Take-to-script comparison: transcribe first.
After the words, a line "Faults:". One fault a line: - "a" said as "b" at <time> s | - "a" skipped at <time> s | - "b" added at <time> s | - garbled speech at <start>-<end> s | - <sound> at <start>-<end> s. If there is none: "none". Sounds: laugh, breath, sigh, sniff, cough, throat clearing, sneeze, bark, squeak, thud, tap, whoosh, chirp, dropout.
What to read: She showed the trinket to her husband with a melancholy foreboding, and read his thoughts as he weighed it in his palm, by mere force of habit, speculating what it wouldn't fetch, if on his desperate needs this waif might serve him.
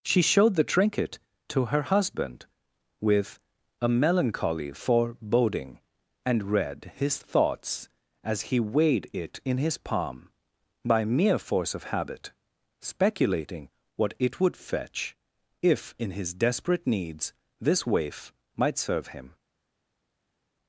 She showed the trinket to her husband with a melancholy foreboding, and read his thoughts as he weighed it in his palm, by mere force of habit, speculating what it would fetch, if in his desperate needs this waif might serve him.
Faults:
- "wouldn't" said as "would" at 14.4 s
- "on" said as "in" at 16.0 s